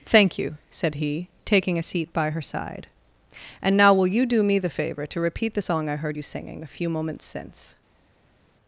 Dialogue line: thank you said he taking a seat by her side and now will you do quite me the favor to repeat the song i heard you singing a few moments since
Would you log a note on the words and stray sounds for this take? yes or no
yes